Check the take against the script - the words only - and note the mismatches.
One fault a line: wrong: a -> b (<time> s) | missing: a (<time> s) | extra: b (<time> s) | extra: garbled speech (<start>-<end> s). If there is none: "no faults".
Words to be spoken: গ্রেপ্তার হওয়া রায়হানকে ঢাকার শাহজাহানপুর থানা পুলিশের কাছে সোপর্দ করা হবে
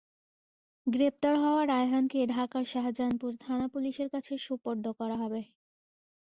no faults